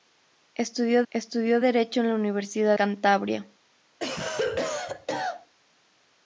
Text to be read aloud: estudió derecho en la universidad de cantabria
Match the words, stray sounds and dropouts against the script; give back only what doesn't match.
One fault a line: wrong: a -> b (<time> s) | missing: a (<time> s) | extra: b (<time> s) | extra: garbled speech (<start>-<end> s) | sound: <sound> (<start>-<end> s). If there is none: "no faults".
extra: estudió (1.1 s)
missing: de (2.8 s)
sound: cough (4.0-5.5 s)